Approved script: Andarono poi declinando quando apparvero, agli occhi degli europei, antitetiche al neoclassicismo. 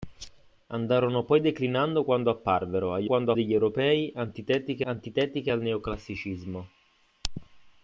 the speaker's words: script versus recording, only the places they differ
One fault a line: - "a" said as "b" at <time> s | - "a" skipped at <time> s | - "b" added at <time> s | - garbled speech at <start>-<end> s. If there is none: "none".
- "occhi" said as "quando" at 3.0 s
- "antitetiche" added at 4.8 s